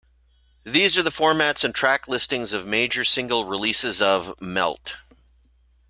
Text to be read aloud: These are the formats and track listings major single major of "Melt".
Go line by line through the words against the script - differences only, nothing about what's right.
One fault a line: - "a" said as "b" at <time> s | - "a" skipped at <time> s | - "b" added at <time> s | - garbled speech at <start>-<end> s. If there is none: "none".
- "of" added at 2.5 s
- "major" said as "releases" at 3.5 s